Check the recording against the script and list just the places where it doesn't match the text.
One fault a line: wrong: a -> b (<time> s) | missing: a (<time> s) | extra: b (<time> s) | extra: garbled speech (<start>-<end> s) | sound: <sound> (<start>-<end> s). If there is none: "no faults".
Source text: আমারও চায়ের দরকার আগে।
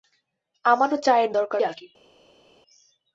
no faults